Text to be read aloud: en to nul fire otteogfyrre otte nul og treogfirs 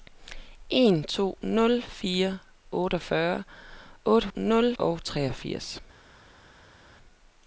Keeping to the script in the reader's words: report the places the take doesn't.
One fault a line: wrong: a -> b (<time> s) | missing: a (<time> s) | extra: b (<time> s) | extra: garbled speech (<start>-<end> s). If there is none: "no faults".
no faults